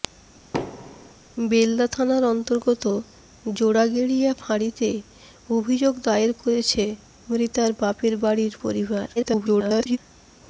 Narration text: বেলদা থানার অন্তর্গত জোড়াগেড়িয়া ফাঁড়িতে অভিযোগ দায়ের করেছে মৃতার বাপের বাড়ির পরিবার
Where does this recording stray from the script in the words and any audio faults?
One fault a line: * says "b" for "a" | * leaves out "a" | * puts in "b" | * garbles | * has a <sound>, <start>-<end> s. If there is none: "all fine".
* has a thud, 0.5-1.1 s
* garbles